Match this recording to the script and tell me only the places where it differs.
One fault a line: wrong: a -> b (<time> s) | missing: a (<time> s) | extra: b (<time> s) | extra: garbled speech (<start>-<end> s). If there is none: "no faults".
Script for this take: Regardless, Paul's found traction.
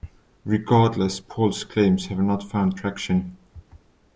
extra: claims have not (1.6 s)